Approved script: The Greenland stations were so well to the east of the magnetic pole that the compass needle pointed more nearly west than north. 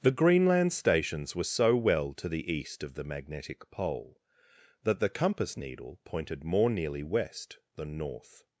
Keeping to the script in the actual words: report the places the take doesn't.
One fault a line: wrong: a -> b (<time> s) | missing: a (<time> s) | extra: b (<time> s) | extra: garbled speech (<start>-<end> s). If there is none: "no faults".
no faults